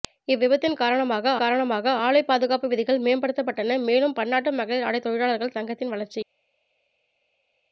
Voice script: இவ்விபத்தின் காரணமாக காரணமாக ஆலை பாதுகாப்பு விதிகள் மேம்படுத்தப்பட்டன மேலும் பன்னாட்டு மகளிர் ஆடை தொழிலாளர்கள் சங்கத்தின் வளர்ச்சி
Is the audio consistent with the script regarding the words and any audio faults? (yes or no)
yes